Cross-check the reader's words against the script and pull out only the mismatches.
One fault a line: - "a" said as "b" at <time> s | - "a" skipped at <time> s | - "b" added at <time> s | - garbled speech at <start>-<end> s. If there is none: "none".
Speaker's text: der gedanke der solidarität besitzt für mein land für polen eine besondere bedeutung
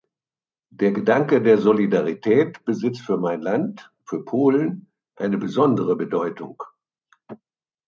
none